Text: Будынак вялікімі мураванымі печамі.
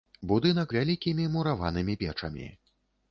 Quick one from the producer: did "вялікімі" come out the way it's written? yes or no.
yes